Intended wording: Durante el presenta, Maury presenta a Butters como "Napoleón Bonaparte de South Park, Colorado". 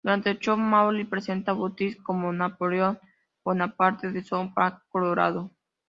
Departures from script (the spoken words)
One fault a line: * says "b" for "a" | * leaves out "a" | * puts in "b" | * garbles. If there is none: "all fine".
* says "show" for "presenta"